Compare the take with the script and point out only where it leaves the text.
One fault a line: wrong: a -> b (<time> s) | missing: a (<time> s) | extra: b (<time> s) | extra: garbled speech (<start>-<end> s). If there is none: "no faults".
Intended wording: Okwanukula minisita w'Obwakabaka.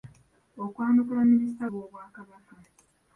no faults